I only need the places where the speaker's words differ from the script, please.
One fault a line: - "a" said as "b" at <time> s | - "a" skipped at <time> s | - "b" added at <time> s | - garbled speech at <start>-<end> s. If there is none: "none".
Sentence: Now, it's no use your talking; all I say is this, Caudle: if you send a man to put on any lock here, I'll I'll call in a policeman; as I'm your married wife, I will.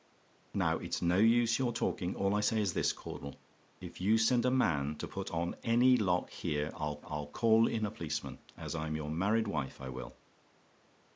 none